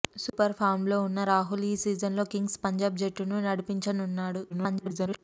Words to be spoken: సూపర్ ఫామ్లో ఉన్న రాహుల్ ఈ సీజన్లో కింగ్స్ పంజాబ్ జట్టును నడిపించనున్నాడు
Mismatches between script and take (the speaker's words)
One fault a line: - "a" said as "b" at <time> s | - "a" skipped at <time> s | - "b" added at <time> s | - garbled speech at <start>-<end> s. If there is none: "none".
- garbled speech at 4.5-5.2 s